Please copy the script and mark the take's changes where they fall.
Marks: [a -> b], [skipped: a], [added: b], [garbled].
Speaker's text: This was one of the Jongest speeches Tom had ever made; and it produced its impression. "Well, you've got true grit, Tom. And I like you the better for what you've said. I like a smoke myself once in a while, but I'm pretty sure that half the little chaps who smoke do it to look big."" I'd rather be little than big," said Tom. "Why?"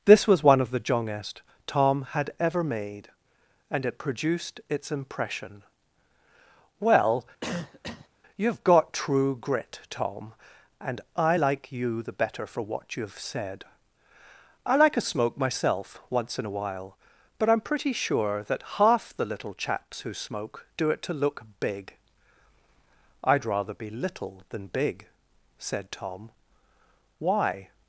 This was one of the Jongest [skipped: speeches] Tom had ever made; and it produced its impression. "Well, you've got true grit, Tom. And I like you the better for what you've said. I like a smoke myself once in a while, but I'm pretty sure that half the little chaps who smoke do it to look big."" I'd rather be little than big," said Tom. "Why?"